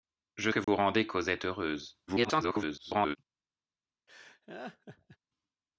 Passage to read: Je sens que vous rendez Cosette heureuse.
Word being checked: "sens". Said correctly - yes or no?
no